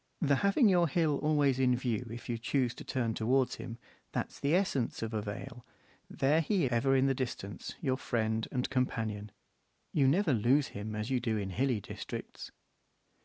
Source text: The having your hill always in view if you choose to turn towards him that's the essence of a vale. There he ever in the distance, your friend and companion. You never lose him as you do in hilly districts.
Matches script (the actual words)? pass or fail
pass